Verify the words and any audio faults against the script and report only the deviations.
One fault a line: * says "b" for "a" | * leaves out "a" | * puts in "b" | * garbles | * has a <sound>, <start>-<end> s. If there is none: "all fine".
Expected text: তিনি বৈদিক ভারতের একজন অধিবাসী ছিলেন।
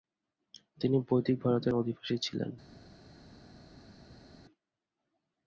* leaves out "একজন"